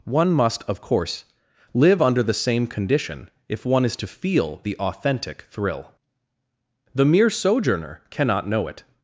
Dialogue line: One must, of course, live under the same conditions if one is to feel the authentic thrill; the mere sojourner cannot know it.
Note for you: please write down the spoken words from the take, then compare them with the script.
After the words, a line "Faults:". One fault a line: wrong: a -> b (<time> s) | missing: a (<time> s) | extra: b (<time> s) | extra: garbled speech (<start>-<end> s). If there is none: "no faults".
One must, of course, live under the same condition if one is to feel the authentic thrill; the mere sojourner cannot know it.
Faults:
wrong: conditions -> condition (2.7 s)